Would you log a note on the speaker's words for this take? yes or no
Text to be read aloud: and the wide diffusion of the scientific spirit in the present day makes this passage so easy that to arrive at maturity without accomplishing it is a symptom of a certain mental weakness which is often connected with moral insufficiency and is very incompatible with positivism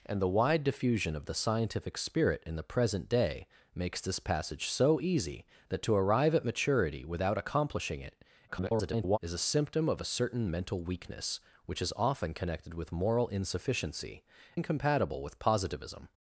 yes